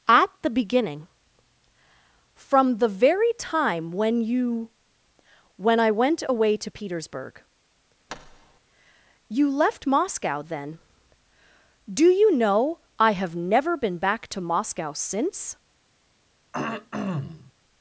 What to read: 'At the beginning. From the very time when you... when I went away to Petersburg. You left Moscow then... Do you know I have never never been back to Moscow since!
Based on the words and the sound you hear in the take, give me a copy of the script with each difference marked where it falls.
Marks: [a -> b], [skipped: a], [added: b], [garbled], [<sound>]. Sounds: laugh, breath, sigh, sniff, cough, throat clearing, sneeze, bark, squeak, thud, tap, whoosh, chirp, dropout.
'At the beginning. From the very time when you... when I went away to Petersburg. [thud] You left Moscow then... Do you know I have never [skipped: never] been back to Moscow since! [throat clearing]